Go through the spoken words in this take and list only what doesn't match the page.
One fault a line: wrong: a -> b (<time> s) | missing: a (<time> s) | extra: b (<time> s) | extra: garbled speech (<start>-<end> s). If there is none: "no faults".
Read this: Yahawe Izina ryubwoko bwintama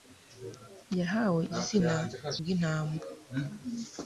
missing: ryubwoko (1.9 s)